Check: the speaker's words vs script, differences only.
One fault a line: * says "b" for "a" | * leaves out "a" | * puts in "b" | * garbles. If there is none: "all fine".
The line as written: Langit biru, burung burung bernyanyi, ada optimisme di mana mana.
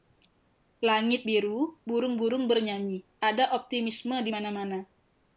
all fine